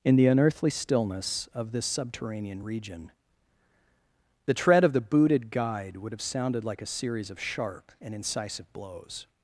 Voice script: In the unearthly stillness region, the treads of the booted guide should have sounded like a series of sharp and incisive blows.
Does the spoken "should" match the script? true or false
false